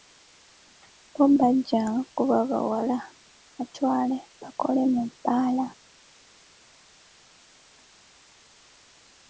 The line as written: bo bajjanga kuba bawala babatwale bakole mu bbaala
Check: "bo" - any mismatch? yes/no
no